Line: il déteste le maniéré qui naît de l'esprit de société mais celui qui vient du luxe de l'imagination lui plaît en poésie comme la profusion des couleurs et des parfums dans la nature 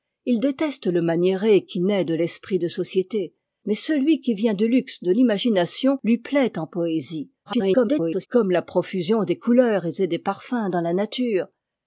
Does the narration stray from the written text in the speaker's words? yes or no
yes